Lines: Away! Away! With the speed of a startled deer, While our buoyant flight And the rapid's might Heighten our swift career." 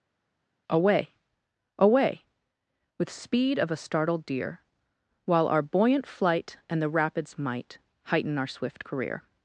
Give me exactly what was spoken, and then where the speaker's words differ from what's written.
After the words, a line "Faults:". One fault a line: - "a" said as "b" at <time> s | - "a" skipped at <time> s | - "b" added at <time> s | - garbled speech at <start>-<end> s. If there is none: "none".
Away! Away! With speed of a startled deer, While our buoyant flight And the rapid's might Heighten our swift career."
Faults:
- "the" skipped at 3.1 s